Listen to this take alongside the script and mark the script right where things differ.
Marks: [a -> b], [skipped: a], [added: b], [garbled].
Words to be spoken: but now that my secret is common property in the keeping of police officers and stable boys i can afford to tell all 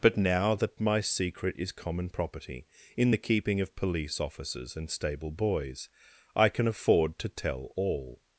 but now that my secret is common property in the keeping of police officers and stable boys i can afford to tell all